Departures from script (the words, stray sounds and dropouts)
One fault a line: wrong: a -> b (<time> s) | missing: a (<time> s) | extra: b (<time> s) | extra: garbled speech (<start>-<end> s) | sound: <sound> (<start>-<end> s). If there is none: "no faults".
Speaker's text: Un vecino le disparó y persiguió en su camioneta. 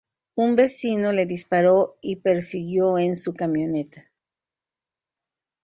no faults